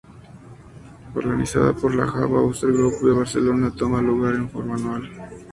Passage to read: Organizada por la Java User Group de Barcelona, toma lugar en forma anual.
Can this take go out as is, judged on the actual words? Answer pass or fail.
pass